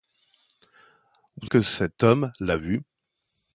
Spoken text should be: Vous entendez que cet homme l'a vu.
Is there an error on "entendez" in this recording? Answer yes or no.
yes